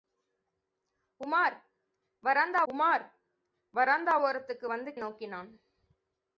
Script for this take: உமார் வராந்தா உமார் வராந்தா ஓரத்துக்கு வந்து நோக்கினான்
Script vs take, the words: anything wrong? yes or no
no